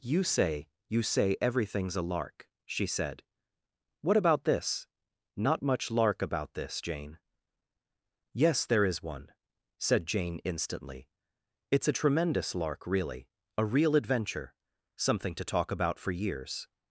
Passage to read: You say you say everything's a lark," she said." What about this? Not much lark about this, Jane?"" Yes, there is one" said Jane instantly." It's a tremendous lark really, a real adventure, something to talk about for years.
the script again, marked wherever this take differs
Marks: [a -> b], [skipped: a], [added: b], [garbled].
You say you say everything's a lark," she said." What about this? Not much lark about this, Jane?"" Yes, there is one" said Jane instantly." It's a tremendous lark really, a real adventure, something to talk about for years.